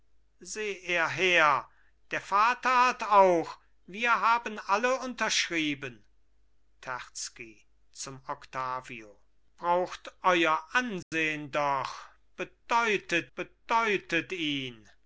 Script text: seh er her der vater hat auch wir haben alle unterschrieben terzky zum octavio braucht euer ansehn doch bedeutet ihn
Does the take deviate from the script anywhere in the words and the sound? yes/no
yes